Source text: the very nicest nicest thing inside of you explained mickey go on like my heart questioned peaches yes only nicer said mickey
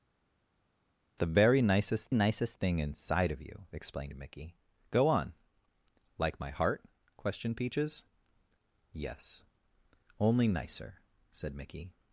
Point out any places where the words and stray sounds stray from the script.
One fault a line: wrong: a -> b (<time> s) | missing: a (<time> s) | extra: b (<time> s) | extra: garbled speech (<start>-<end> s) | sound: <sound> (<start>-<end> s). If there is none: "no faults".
no faults